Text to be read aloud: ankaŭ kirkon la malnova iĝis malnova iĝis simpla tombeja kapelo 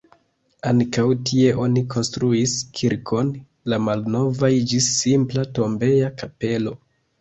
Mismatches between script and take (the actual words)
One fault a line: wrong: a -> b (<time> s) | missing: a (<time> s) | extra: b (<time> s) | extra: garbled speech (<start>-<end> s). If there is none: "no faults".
extra: tie oni konstruis (1.3 s)
missing: malnova iĝis (4.9 s)